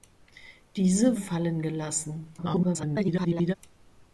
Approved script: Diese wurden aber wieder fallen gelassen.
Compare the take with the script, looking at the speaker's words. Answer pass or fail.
fail